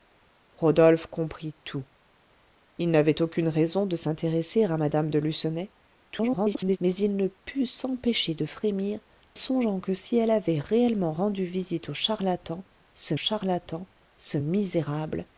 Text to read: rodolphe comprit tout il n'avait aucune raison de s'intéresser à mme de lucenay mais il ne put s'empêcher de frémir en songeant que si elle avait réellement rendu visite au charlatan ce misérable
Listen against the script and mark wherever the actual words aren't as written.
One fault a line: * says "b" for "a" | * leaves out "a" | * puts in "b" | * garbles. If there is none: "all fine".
* garbles
* leaves out "en"
* puts in "charlatan ce"